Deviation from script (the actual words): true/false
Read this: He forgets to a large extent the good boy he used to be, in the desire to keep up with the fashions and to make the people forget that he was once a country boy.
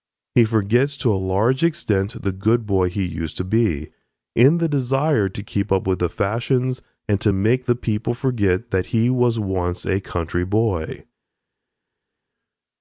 false